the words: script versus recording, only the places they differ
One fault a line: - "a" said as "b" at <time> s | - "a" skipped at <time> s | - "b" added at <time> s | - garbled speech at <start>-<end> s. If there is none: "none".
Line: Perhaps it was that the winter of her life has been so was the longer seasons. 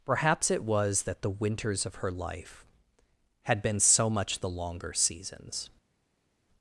- "winter" said as "winters" at 1.3 s
- "has" said as "had" at 3.4 s
- "was" said as "much" at 4.1 s